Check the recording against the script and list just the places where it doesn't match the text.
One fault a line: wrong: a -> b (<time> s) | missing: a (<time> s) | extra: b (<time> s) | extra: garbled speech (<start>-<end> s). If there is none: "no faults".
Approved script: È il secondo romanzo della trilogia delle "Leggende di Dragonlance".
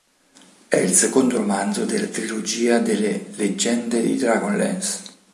no faults